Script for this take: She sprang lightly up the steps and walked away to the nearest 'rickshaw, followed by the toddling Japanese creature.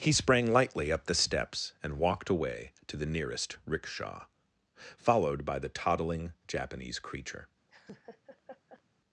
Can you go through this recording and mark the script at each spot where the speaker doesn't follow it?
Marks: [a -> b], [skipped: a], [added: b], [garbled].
[She -> He] sprang lightly up the steps and walked away to the nearest 'rickshaw, followed by the toddling Japanese creature.